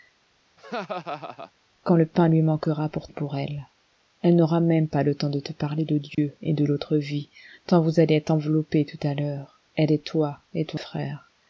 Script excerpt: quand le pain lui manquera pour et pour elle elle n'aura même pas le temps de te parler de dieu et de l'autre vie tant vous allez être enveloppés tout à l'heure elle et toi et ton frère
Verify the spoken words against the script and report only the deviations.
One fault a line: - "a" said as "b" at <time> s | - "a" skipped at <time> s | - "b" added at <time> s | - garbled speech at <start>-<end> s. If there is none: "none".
none